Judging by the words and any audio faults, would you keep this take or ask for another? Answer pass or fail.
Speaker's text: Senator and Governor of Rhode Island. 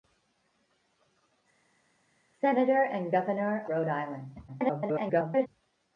fail